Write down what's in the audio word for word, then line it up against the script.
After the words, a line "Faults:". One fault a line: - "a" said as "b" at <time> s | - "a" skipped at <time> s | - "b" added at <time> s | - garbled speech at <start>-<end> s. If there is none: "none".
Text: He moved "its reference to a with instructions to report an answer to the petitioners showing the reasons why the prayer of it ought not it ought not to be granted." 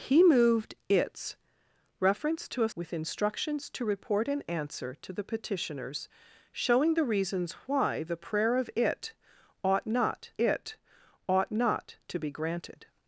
He moved "its reference to a with instructions to report an answer to the petitioners showing the reasons why the prayer of it ought not it ought not to be granted."
Faults:
none